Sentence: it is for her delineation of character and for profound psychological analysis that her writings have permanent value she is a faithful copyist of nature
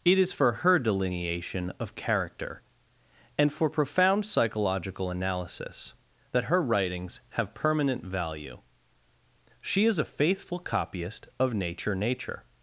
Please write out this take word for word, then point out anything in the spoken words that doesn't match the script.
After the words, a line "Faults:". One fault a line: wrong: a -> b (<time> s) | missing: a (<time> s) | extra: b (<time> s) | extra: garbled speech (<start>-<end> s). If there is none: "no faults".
it is for her delineation of character and for profound psychological analysis that her writings have permanent value she is a faithful copyist of nature nature
Faults:
extra: nature (12.0 s)